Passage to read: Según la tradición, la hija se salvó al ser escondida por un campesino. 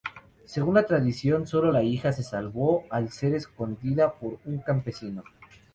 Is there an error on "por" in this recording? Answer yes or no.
no